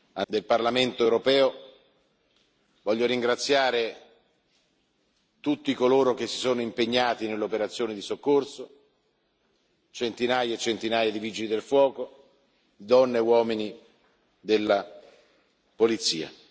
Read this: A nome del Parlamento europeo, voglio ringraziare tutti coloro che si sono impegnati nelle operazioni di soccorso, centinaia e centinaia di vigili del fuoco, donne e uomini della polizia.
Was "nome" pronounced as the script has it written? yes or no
no